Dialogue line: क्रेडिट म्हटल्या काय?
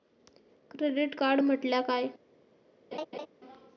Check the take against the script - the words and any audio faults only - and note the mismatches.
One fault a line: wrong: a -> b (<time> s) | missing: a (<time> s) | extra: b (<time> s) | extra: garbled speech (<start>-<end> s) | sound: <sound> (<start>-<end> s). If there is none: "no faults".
extra: कार्ड (1.1 s)
sound: laugh (2.9-3.3 s)